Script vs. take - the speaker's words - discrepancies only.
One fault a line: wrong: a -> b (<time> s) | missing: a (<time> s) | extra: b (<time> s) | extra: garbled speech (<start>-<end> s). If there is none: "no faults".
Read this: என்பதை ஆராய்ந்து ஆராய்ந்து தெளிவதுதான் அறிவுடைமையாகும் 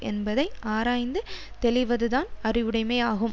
missing: ஆராய்ந்து (1.2 s)